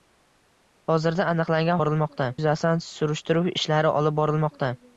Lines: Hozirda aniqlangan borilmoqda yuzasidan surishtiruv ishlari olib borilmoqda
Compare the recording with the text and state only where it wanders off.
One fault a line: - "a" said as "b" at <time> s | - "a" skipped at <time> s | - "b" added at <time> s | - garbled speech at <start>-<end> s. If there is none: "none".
none